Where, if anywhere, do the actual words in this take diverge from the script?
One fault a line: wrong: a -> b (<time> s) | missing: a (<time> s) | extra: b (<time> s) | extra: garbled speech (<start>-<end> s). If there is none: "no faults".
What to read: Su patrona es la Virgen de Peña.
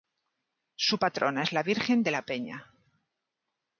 extra: la (2.1 s)